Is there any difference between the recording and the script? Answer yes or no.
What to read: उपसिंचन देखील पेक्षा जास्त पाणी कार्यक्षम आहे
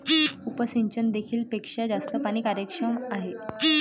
no